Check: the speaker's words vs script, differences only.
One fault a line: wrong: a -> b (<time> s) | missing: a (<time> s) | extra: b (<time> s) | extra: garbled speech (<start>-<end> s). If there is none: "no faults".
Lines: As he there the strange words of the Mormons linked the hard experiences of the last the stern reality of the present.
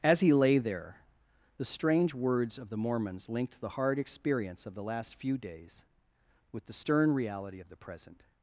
extra: lay (0.3 s)
wrong: experiences -> experience (4.0 s)
extra: few days with (5.2 s)